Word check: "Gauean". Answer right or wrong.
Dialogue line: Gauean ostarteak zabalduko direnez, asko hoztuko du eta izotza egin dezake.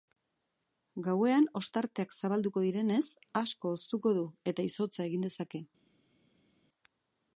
right